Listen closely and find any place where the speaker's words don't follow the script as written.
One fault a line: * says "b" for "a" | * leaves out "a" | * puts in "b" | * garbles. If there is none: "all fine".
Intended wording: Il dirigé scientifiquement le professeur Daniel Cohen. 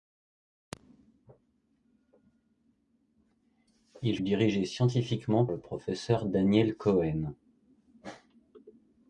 all fine